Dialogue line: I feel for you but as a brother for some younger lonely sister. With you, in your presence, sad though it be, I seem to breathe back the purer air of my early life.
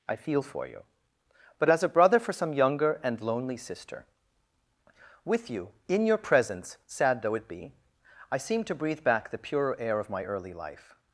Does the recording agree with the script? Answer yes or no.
no